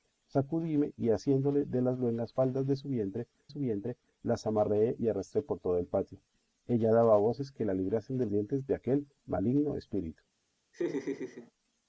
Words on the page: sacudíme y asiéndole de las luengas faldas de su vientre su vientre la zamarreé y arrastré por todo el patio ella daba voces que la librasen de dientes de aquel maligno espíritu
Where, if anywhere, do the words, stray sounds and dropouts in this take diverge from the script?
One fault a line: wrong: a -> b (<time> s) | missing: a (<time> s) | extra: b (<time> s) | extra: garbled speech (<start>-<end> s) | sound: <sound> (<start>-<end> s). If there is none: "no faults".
sound: laugh (10.7-11.5 s)